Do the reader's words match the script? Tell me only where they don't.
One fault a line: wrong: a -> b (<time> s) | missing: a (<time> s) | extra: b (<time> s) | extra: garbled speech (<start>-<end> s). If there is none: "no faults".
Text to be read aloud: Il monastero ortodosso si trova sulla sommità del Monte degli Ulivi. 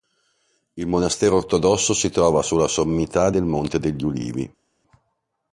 no faults